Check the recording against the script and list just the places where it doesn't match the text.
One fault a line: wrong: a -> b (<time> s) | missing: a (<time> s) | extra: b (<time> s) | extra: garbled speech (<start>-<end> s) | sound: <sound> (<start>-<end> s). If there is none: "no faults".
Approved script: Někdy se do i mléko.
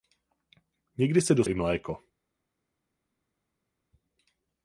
no faults